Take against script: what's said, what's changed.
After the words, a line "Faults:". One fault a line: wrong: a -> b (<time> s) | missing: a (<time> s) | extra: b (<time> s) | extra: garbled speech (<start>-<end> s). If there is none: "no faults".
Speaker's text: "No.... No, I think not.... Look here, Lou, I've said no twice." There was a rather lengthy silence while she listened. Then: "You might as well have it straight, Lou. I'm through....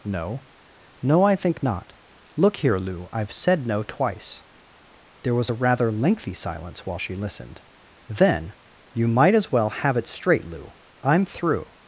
"No.... No, I think not.... Look here, Lou, I've said no twice." There was a rather lengthy silence while she listened. Then: "You might as well have it straight, Lou. I'm through....
Faults:
no faults